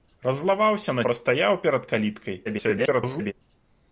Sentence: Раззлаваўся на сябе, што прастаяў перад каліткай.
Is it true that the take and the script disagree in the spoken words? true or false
true